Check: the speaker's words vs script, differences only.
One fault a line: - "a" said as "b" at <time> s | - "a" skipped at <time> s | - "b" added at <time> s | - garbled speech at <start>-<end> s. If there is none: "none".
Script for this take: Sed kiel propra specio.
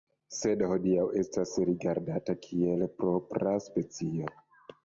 - "hodiaŭ estas rigardata" added at 0.7 s